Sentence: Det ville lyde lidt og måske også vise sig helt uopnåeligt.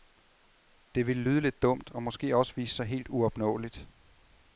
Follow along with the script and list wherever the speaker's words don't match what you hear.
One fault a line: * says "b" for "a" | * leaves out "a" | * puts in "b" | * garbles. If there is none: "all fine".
* puts in "dumt"